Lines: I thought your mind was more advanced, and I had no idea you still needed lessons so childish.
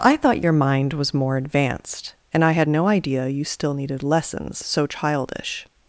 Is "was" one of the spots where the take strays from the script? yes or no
no